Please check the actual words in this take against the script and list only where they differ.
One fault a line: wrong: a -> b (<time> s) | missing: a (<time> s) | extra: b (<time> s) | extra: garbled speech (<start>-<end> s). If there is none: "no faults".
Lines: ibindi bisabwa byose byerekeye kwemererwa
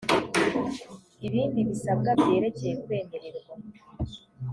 missing: byose (2.1 s)